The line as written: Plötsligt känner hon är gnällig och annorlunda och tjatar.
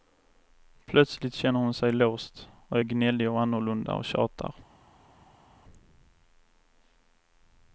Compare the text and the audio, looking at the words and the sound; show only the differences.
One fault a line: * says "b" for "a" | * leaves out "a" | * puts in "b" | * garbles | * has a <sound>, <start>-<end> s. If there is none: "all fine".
* puts in "sig låst och"